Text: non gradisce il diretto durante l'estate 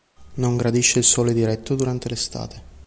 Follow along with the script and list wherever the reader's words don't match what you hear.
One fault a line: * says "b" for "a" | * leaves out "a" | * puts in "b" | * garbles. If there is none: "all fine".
* puts in "sole"